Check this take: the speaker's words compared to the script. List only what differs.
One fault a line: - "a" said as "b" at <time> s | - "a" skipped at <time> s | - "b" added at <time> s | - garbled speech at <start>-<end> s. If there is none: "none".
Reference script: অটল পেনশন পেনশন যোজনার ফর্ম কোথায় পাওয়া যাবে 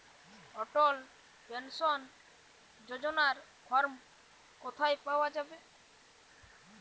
- "পেনশন" skipped at 2.0 s